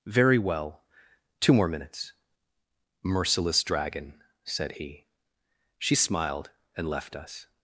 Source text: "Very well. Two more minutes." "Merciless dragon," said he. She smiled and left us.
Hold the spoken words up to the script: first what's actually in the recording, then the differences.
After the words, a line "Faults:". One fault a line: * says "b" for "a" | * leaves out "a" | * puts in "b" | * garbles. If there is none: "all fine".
"Very well. Two more minutes." "Merciless dragon," said he. She smiled and left us.
Faults:
all fine